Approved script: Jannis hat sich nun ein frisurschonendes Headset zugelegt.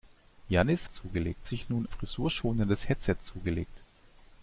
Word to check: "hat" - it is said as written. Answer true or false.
false